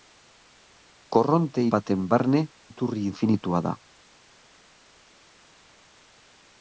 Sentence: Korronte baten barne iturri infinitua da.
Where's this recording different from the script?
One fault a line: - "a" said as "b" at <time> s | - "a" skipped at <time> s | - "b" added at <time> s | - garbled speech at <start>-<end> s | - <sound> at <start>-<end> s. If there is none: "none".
none